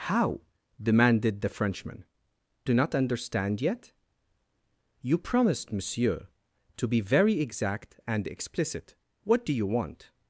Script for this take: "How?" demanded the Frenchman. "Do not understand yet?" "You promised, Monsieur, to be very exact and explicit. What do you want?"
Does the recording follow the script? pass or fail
pass